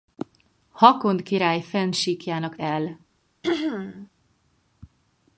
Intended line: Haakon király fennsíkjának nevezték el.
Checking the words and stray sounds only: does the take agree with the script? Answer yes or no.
no